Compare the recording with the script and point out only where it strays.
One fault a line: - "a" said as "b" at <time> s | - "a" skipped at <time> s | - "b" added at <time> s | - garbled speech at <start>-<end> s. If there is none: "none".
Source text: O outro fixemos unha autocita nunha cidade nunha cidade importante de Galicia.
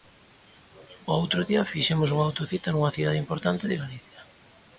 - "día" added at 1.5 s
- "nunha cidade" skipped at 3.2 s